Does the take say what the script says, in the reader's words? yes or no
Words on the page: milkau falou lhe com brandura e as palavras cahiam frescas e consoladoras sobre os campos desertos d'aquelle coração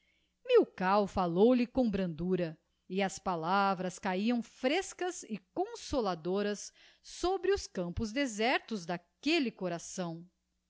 yes